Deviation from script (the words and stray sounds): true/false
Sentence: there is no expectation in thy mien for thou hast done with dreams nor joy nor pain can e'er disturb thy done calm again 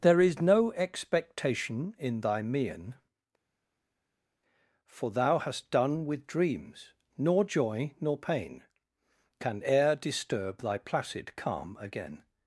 true